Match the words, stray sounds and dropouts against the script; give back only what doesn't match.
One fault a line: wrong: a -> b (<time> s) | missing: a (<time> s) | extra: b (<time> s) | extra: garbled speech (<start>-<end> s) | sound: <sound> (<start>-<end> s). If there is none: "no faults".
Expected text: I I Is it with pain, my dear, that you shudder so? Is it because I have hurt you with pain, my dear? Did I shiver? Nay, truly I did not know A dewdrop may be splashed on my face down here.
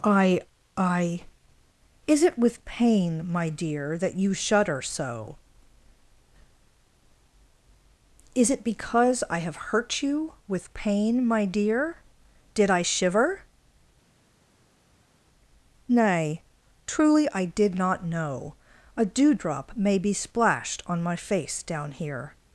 no faults